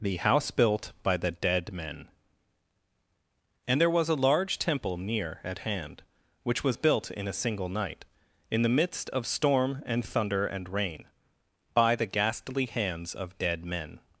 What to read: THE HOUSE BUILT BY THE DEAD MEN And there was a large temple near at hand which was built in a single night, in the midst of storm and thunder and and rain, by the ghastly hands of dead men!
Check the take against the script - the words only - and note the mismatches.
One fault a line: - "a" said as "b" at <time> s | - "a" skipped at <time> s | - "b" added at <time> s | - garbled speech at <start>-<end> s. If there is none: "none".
- "and" skipped at 10.7 s